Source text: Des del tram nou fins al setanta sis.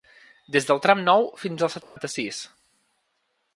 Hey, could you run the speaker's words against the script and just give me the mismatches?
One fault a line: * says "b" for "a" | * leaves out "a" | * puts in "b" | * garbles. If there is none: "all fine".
all fine